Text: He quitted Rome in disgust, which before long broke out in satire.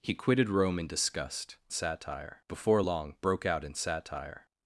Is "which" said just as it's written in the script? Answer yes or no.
no